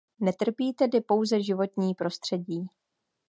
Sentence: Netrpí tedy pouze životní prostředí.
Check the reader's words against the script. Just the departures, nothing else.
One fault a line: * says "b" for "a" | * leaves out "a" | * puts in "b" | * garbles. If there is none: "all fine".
all fine